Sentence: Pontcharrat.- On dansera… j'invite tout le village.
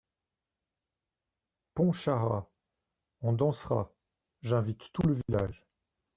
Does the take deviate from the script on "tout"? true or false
false